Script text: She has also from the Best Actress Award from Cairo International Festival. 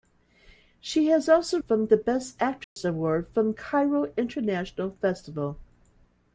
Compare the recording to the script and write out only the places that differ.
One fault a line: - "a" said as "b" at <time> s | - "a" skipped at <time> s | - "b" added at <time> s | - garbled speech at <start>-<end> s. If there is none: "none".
none